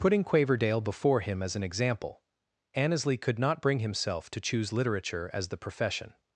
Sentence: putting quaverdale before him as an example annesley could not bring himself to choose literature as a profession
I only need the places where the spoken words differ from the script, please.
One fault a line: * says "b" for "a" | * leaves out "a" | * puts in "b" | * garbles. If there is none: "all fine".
* says "the" for "a"